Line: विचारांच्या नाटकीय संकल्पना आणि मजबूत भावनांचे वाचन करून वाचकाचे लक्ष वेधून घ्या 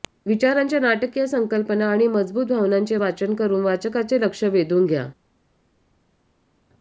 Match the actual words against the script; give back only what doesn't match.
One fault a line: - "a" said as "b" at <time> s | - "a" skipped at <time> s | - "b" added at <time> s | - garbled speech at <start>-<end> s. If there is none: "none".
none